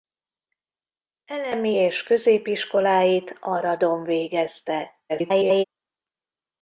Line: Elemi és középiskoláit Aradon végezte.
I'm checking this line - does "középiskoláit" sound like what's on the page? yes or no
yes